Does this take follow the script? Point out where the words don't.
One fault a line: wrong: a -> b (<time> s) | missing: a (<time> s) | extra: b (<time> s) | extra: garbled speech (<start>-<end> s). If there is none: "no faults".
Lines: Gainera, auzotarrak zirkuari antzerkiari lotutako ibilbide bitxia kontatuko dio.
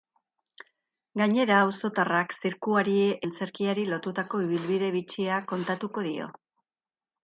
no faults